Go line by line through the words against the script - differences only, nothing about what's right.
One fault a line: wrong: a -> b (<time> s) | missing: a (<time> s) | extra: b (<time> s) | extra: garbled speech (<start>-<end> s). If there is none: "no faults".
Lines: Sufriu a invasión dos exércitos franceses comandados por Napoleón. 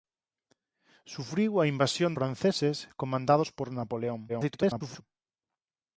missing: dos exércitos (2.1 s)
extra: garbled speech (4.3-5.0 s)